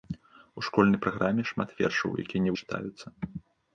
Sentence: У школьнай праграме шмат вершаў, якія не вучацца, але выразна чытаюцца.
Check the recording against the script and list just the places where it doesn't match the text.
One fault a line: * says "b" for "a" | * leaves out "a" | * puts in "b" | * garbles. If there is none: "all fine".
* leaves out "вучацца але выразна"